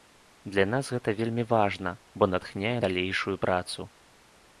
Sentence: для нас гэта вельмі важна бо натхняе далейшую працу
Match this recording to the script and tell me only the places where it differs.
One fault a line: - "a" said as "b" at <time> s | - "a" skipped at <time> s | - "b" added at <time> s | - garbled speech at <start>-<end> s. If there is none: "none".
none